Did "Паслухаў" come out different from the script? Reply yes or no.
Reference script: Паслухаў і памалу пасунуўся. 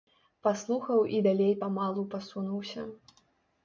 no